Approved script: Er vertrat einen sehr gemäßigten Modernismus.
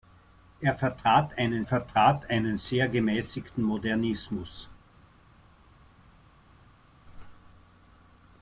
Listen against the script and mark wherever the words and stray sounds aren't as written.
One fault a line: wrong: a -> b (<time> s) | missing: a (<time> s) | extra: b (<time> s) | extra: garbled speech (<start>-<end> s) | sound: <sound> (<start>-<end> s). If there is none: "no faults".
extra: vertrat einen (1.6 s)